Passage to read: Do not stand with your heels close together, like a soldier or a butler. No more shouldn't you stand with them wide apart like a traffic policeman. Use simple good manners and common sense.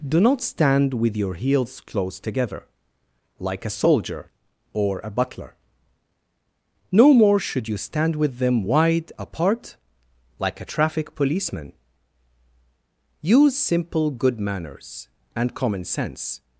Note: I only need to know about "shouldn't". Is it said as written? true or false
false